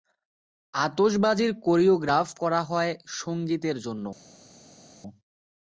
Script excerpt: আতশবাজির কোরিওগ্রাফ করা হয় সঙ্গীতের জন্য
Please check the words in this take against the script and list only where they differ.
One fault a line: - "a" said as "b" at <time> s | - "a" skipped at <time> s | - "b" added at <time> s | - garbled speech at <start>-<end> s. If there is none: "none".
none